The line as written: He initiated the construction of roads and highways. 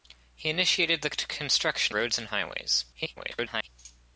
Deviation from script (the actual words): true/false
true